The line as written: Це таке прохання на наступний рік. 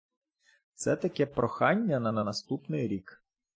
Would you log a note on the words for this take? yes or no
yes